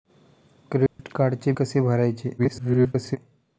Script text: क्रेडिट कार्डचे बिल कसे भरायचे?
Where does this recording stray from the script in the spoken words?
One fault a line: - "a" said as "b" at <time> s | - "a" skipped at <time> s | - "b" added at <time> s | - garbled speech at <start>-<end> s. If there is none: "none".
- "बिल" skipped at 1.5 s
- garbled speech at 2.4-3.2 s